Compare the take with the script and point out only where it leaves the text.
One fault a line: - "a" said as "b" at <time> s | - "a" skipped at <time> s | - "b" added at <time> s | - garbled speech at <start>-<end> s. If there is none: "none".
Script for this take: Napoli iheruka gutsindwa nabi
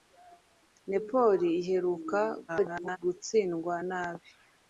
- garbled speech at 2.5-3.0 s